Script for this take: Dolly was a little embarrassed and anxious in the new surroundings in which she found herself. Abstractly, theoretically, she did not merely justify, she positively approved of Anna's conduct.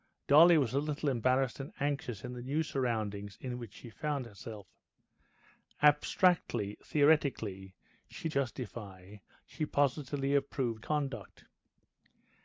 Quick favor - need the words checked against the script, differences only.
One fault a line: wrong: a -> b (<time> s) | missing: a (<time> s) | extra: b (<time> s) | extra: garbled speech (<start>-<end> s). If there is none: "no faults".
missing: did not merely (8.3 s)
missing: of Anna's (10.8 s)